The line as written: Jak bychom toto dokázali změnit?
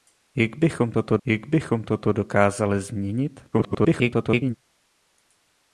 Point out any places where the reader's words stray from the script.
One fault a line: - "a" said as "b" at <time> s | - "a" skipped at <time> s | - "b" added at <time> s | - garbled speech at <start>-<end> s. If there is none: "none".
- "jak bychom toto" added at 1.2 s
- garbled speech at 3.5-4.6 s